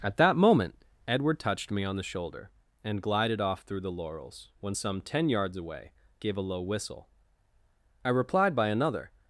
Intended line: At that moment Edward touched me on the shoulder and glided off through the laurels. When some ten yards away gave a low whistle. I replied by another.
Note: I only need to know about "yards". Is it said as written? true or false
true